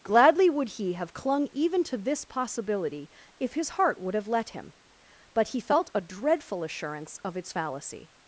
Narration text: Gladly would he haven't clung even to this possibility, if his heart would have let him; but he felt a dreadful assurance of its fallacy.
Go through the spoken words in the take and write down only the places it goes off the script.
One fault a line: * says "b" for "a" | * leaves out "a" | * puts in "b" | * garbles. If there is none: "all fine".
* says "have" for "haven't"